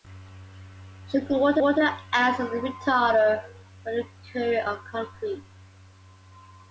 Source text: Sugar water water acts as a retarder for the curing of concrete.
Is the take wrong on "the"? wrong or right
right